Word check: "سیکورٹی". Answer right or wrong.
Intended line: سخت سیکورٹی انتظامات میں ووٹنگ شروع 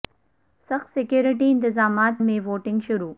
right